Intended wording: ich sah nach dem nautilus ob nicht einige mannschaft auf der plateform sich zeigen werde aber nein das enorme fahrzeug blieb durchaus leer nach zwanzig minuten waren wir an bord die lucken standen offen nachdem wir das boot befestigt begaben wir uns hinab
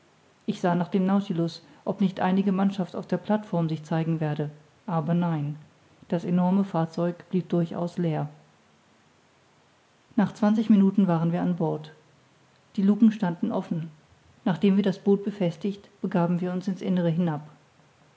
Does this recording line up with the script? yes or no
no